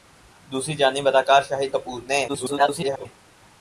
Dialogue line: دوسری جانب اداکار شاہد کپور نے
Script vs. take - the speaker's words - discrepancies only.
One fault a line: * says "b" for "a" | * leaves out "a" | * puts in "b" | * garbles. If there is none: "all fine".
* garbles